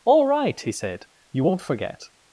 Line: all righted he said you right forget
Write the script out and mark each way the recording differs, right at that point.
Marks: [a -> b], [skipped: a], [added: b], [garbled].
all [righted -> right] he said you [right -> won't] forget